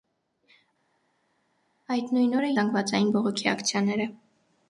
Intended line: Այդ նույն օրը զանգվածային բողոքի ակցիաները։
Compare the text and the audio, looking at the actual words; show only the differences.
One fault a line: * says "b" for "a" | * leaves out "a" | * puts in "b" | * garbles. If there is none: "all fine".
all fine